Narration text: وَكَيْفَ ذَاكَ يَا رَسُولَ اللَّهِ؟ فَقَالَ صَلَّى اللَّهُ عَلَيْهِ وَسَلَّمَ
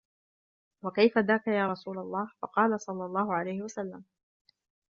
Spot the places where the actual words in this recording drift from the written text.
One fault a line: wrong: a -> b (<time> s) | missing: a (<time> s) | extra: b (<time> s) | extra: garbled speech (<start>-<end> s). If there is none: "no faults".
no faults